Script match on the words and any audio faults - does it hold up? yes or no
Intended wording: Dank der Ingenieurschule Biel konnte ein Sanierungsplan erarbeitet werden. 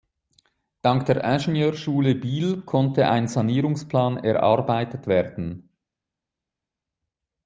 yes